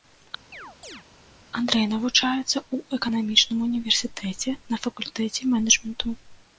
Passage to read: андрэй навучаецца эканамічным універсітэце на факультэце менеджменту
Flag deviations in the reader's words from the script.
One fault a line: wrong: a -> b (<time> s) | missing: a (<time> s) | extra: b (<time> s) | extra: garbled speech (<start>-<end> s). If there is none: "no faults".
extra: ў (2.7 s)